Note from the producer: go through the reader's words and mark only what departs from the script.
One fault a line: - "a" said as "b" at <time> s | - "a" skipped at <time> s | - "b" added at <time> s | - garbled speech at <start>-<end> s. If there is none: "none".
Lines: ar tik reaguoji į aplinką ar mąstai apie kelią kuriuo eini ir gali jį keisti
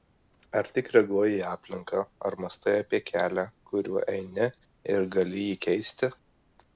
none